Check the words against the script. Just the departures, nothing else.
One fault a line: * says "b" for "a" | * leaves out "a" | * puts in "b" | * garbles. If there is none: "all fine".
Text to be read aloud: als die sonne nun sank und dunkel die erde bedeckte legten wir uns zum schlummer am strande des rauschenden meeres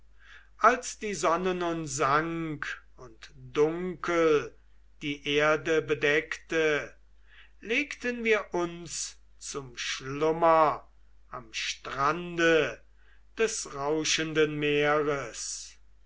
all fine